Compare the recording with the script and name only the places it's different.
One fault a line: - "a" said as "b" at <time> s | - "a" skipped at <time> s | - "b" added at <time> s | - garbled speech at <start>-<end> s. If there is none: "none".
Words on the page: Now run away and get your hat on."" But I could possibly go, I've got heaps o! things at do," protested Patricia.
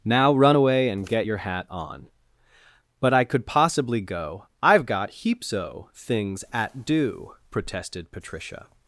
none